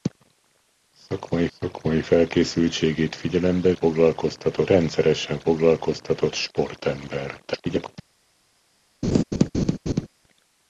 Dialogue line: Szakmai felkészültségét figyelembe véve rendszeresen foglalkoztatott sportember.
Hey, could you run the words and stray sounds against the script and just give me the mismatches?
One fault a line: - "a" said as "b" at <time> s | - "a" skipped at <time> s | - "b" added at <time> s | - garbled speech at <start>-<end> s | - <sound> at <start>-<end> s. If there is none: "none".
- "szakmai" added at 1.6 s
- "véve" said as "foglalkoztatott" at 3.7 s
- garbled speech at 7.5-7.9 s
- laugh at 9.0-10.1 s